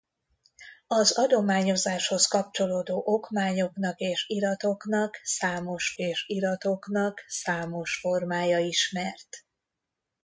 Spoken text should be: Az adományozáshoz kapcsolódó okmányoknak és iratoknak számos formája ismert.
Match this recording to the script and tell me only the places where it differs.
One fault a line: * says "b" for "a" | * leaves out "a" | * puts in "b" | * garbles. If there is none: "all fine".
* puts in "és iratoknak számos"